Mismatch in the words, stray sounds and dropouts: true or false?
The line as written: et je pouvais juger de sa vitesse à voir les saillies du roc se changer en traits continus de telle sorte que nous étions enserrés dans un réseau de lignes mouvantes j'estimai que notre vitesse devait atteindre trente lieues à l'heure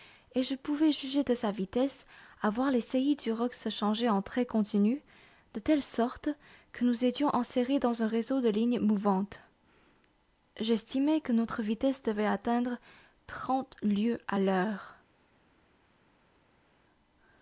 false